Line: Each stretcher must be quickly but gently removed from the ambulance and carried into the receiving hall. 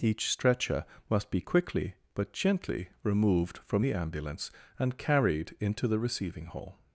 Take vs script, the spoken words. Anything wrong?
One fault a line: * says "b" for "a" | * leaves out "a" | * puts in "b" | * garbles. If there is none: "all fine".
all fine